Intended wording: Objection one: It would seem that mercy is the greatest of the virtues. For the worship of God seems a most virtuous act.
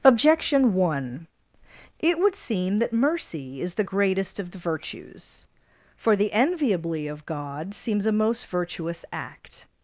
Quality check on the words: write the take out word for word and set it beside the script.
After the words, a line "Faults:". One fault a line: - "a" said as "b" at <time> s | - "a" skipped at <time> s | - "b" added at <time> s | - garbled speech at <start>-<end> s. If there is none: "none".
Objection one: It would seem that mercy is the greatest of the virtues. For the enviably of God seems a most virtuous act.
Faults:
- "worship" said as "enviably" at 6.3 s